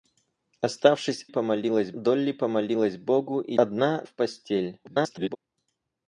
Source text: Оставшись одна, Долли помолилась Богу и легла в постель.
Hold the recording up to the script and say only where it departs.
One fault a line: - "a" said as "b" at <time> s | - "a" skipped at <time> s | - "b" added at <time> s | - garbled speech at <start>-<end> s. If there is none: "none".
- "одна" said as "помолилась" at 1.2 s
- "легла" said as "одна" at 3.5 s
- garbled speech at 4.8-5.4 s